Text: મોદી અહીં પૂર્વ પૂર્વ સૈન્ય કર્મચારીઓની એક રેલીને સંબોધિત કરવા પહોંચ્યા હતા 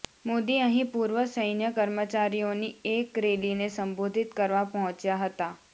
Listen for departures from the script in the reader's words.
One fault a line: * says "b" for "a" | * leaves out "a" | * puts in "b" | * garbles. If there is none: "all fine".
* leaves out "પૂર્વ"